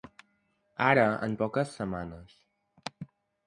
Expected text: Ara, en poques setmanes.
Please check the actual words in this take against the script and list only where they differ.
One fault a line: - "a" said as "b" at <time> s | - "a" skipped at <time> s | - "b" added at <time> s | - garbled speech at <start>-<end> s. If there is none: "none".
none